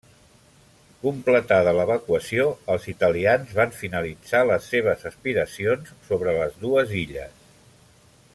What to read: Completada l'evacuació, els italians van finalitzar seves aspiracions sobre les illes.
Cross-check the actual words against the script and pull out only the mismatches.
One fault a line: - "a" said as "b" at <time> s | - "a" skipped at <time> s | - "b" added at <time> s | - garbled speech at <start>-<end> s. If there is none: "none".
- "les" added at 4.5 s
- "dues" added at 6.7 s